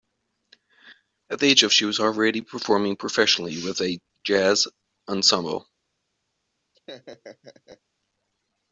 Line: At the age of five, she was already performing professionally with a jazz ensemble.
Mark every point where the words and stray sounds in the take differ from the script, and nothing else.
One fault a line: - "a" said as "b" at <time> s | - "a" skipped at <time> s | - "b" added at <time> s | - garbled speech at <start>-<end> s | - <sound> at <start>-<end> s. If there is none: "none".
- "five" skipped at 1.7 s
- laugh at 6.7-7.8 s